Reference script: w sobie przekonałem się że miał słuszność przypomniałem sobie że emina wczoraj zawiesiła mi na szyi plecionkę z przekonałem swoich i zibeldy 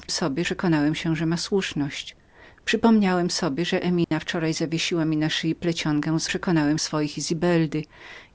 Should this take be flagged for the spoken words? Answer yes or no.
no